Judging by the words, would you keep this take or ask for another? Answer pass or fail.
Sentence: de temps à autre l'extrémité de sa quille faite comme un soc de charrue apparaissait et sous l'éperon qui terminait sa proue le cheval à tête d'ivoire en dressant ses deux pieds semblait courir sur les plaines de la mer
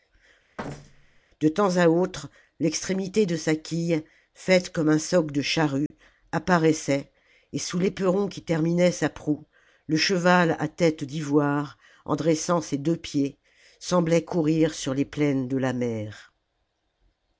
pass